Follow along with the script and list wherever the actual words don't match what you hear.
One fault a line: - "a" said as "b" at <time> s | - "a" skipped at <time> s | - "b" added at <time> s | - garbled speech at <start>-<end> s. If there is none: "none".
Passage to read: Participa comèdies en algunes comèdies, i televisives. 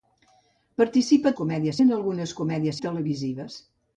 none